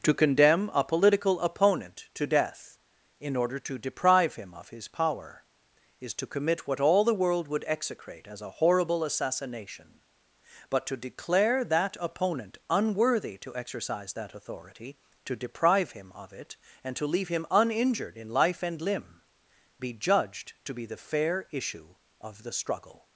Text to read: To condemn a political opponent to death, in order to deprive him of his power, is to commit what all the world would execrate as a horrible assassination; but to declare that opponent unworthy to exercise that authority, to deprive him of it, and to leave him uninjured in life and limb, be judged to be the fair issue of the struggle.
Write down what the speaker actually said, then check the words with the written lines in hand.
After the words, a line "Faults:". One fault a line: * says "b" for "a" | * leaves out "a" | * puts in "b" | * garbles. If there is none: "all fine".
To condemn a political opponent to death, in order to deprive him of his power, is to commit what all the world would execrate as a horrible assassination; but to declare that opponent unworthy to exercise that authority, to deprive him of it, and to leave him uninjured in life and limb, be judged to be the fair issue of the struggle.
Faults:
all fine